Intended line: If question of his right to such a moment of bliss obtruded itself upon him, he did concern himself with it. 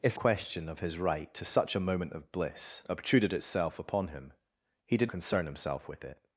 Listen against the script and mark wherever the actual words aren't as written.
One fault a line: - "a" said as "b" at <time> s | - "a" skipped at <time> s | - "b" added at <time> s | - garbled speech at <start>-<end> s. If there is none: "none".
none